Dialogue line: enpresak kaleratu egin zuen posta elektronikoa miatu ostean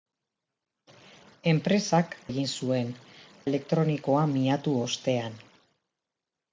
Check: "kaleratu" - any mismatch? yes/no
yes